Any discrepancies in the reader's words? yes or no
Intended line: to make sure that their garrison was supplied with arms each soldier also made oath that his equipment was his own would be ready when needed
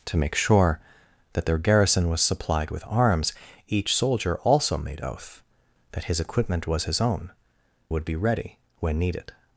no